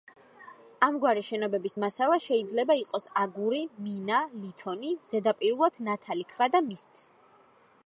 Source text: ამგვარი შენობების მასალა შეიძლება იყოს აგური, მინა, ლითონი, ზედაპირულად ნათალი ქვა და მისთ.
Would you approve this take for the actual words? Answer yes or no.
yes